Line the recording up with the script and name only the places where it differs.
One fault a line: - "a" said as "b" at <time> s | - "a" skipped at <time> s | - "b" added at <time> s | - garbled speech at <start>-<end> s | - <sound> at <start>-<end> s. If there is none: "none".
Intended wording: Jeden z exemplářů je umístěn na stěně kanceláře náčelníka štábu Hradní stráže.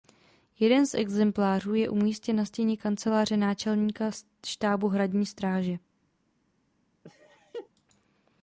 - laugh at 7.0-7.7 s